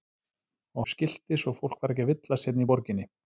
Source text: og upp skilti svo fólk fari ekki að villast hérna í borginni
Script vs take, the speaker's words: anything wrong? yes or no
no